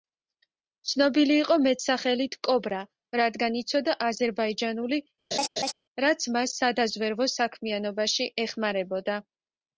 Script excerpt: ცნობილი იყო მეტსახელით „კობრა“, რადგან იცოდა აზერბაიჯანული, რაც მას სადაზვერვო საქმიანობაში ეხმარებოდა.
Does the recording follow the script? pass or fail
pass